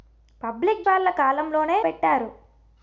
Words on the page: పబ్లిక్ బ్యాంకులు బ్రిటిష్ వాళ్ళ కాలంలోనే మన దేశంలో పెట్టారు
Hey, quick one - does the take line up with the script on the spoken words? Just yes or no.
no